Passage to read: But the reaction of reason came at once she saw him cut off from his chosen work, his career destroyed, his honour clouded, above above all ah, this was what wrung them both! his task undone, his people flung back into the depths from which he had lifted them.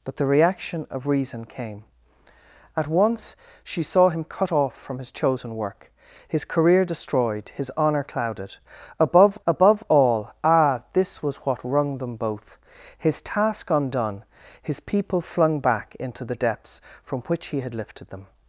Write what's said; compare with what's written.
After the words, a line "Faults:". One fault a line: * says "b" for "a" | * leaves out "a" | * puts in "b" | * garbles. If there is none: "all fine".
But the reaction of reason came at once she saw him cut off from his chosen work, his career destroyed, his honour clouded, above above all ah, this was what wrung them both! his task undone, his people flung back into the depths from which he had lifted them.
Faults:
all fine